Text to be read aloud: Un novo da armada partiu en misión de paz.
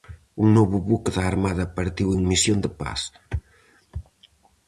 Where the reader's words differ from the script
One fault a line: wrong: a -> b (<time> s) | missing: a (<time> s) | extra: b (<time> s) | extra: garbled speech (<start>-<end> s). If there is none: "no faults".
extra: buque (0.9 s)